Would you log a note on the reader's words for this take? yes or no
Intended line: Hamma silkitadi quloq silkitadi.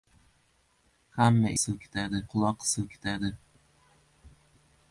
no